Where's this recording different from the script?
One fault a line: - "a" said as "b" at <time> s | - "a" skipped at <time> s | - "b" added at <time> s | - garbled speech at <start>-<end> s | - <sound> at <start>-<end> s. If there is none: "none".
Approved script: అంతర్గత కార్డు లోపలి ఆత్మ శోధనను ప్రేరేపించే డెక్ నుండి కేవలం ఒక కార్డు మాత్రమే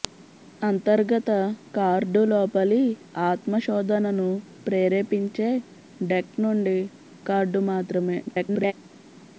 - "కేవలం ఒక" skipped at 6.8 s
- garbled speech at 8.3-8.7 s